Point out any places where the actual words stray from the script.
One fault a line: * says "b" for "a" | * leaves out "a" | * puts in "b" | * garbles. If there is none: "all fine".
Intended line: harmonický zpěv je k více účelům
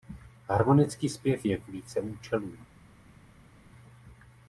all fine